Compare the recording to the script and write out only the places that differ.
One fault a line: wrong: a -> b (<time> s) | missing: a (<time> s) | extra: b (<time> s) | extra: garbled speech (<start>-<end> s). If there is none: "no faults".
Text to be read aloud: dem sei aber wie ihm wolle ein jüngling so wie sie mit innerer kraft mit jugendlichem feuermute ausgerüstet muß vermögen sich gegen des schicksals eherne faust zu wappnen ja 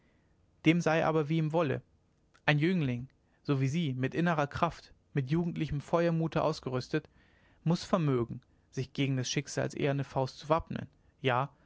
no faults